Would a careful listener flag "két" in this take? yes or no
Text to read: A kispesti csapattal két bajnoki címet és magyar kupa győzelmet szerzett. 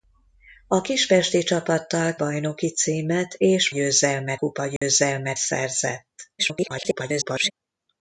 yes